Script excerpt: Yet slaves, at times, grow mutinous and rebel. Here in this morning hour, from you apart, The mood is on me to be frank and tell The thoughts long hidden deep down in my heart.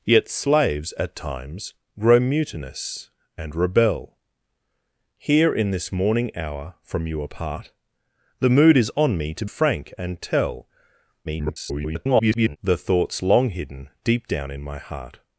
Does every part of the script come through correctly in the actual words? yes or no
no